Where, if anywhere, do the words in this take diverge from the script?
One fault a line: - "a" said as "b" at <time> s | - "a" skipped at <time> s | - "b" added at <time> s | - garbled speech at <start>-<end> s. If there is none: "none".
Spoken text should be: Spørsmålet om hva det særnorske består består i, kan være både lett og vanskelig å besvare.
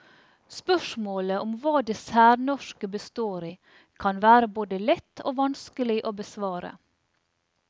- "består" skipped at 3.5 s